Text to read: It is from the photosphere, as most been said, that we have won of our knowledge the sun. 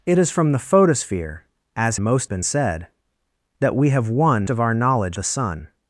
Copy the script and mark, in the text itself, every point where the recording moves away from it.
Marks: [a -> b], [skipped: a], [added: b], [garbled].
It is from the photosphere, as most been said, that we have won of our knowledge the sun.